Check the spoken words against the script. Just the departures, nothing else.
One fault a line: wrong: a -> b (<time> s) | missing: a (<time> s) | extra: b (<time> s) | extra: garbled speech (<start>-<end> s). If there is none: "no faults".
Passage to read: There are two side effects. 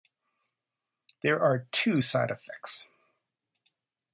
no faults